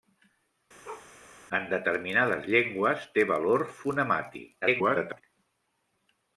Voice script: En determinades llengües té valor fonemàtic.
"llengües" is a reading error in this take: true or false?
false